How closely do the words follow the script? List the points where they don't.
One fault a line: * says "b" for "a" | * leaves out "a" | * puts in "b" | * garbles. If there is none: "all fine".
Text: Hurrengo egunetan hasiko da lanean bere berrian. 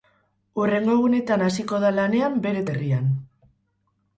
all fine